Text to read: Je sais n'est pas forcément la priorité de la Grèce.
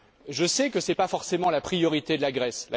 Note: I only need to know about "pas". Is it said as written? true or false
true